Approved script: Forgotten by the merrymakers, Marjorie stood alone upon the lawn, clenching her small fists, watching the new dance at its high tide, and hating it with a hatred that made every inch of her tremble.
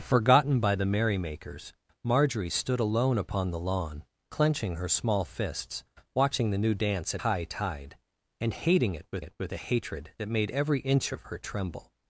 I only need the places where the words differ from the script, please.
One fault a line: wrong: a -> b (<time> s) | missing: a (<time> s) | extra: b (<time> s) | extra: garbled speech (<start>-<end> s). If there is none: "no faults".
missing: its (7.2 s)
extra: it with (9.2 s)